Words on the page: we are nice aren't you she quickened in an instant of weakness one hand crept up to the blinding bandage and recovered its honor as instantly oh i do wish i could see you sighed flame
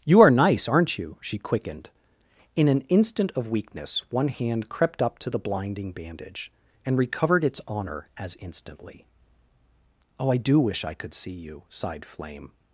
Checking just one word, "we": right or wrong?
wrong